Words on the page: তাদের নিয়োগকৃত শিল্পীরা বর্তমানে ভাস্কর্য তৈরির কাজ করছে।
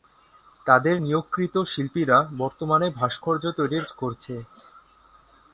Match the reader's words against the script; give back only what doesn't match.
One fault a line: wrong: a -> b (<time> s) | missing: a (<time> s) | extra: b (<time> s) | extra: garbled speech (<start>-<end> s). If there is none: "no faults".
missing: কাজ (3.9 s)